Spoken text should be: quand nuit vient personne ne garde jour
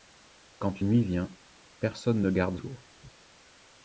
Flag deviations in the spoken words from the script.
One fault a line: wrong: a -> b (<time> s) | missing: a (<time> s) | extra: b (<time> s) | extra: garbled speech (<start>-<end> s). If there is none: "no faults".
no faults